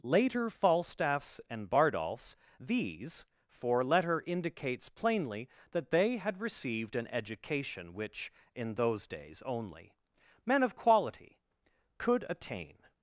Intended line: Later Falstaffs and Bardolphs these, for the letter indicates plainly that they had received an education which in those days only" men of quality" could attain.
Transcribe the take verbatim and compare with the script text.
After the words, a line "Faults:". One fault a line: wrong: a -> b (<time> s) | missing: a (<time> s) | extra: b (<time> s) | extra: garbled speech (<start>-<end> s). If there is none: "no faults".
Later Falstaffs and Bardolphs these, for letter indicates plainly that they had received an education which in those days only" men of quality" could attain.
Faults:
missing: the (3.8 s)